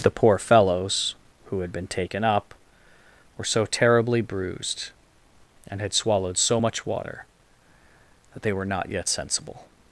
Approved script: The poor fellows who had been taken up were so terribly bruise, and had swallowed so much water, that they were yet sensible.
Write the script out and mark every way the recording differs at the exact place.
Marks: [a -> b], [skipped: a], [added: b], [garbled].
The poor fellows who had been taken up were so terribly [bruise, -> bruised] and had swallowed so much water, that they were [added: not] yet sensible.